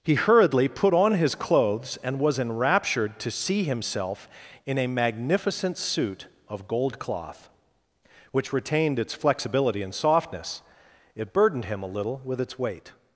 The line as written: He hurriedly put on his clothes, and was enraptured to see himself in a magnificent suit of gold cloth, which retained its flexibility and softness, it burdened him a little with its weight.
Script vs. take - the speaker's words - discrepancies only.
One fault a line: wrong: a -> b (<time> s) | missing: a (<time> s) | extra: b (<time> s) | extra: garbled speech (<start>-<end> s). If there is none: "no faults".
no faults